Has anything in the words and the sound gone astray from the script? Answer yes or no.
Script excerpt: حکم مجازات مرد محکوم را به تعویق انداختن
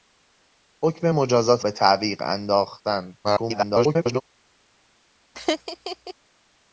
yes